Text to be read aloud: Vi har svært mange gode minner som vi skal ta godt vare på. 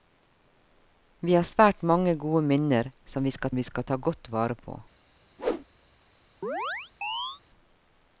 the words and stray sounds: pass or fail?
fail